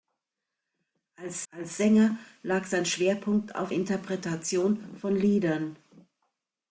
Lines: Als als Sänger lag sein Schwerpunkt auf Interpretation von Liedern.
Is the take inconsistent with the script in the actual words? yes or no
no